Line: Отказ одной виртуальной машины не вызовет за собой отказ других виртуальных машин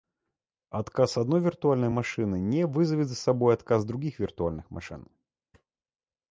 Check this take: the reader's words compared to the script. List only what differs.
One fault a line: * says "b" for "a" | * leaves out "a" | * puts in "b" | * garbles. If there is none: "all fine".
all fine